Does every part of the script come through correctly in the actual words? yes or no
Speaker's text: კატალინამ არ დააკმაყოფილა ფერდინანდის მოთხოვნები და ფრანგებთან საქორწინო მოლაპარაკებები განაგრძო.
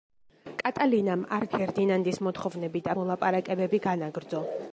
no